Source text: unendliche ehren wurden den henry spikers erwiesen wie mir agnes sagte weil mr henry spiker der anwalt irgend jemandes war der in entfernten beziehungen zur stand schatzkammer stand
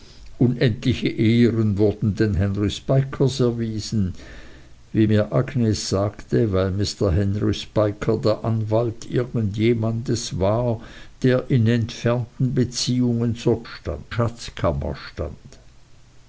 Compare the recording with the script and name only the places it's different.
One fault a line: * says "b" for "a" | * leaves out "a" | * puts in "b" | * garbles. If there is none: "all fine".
all fine